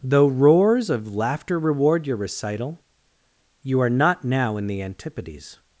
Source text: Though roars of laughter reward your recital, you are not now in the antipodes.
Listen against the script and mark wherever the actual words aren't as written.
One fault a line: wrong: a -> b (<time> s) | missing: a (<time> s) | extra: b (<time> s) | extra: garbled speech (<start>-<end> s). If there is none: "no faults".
no faults